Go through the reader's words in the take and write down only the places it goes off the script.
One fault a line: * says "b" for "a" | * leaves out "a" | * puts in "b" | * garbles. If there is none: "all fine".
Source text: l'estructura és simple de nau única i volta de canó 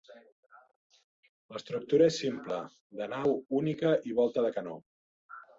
all fine